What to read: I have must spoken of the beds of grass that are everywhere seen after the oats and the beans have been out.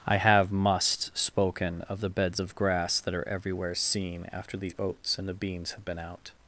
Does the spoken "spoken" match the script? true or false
true